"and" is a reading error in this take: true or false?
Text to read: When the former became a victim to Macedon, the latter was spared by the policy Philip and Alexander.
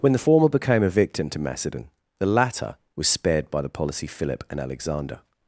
false